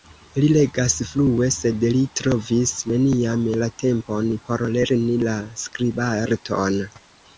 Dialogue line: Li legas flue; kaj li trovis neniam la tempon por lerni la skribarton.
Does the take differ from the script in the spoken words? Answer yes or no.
yes